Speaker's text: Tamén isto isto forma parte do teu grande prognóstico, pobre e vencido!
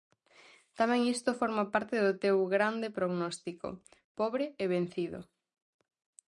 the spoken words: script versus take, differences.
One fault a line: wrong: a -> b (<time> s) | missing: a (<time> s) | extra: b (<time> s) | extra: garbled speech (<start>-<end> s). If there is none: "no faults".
missing: isto (1.4 s)